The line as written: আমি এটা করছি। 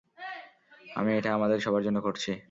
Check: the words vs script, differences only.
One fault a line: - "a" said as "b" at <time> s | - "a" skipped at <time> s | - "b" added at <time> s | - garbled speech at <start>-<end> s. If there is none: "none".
- "আমাদের সবার জন্য" added at 1.3 s